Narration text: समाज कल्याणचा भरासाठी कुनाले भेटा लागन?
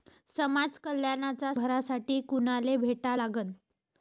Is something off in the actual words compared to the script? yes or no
no